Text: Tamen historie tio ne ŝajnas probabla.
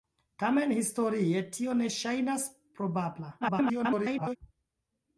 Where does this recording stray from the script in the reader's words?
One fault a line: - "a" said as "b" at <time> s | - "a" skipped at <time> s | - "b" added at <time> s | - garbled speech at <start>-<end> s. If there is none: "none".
- garbled speech at 3.4-4.4 s